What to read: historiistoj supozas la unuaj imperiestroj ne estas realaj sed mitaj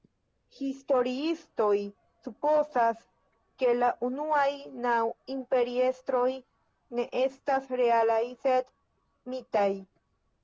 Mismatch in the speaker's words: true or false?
true